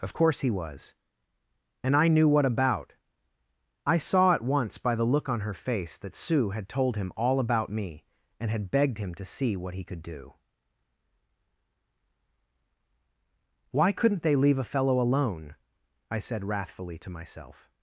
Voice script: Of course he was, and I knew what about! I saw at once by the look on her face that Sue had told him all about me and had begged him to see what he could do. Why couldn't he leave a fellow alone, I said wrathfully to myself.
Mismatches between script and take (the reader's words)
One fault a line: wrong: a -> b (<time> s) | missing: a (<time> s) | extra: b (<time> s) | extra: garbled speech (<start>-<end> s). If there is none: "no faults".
wrong: he -> they (14.2 s)